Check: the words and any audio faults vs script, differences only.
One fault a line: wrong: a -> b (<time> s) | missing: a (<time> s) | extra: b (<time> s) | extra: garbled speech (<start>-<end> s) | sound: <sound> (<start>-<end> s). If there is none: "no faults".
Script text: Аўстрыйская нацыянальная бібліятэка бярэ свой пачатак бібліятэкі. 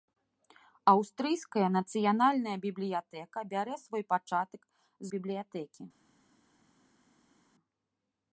no faults